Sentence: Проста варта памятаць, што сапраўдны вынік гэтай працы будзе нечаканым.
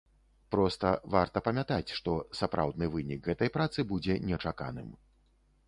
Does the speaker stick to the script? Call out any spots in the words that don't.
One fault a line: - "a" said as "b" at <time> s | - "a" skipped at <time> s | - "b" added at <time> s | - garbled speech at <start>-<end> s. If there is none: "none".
none